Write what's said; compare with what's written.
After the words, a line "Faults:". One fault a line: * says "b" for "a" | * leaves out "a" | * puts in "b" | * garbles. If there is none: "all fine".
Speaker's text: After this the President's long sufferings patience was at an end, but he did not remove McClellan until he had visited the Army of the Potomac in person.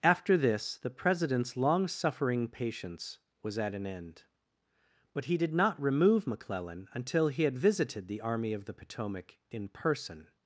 After this the President's long suffering patience was at an end, but he did not remove McClellan until he had visited the Army of the Potomac in person.
Faults:
* says "suffering" for "sufferings"